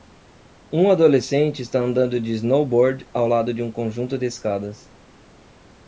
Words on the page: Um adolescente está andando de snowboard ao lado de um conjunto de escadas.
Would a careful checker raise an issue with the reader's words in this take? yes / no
no